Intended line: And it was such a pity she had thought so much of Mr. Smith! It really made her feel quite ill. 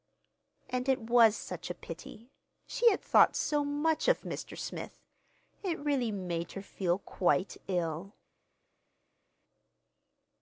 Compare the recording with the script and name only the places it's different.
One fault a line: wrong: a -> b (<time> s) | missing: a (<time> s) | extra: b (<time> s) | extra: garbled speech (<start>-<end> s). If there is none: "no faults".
no faults